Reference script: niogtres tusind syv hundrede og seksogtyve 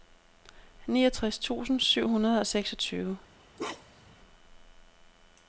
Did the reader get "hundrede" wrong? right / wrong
right